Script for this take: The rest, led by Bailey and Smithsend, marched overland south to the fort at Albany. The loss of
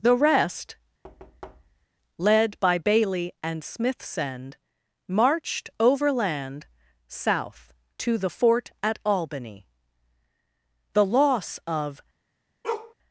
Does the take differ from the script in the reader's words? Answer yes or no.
no